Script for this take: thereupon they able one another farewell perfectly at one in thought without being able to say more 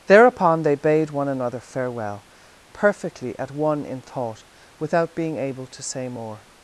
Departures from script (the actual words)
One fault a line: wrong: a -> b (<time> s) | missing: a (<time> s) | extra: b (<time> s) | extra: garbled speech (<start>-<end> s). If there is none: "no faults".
wrong: able -> bade (0.8 s)